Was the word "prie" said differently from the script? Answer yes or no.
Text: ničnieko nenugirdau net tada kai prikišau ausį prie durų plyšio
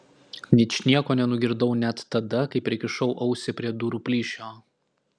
no